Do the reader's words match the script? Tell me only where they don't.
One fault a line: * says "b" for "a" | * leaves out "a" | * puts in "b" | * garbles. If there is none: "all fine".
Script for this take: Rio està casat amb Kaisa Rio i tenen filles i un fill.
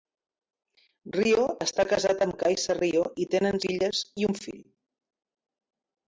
all fine